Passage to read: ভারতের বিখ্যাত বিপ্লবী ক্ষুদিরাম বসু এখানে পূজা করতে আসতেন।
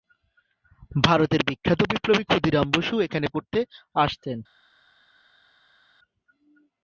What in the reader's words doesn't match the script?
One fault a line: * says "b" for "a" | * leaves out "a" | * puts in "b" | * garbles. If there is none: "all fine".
* leaves out "পূজা"